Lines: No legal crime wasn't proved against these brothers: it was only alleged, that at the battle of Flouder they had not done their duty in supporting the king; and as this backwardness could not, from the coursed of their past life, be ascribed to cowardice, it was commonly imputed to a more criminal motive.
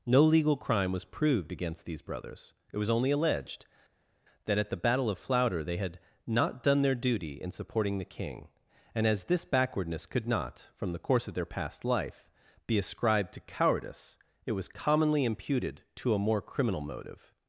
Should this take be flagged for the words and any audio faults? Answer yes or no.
yes